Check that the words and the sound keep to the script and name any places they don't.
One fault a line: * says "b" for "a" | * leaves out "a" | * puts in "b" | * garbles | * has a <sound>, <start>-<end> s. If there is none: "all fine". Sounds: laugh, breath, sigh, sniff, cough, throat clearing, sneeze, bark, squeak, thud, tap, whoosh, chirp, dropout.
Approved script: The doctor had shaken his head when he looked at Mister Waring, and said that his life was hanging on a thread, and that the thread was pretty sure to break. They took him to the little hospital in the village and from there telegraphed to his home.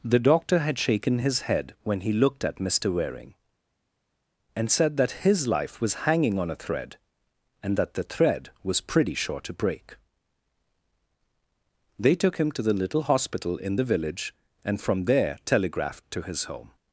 all fine